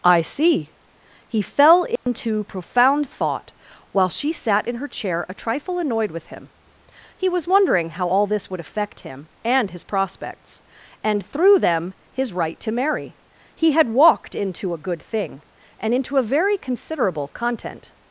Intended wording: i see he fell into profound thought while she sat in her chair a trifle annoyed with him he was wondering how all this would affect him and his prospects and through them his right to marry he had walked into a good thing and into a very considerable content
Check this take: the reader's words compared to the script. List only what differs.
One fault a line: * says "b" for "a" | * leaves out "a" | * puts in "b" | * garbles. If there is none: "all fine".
all fine